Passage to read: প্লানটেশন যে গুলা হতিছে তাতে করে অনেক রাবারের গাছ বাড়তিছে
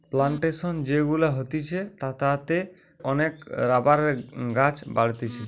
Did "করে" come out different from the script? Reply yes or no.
yes